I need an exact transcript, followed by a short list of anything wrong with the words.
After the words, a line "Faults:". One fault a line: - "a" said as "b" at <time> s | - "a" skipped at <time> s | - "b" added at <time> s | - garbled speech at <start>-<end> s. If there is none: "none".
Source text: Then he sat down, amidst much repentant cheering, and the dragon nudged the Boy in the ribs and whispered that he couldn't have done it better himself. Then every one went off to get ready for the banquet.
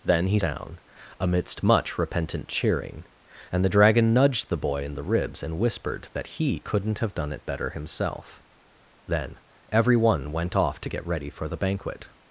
Then he down, amidst much repentant cheering, and the dragon nudged the Boy in the ribs and whispered that he couldn't have done it better himself. Then every one went off to get ready for the banquet.
Faults:
- "sat" skipped at 0.4 s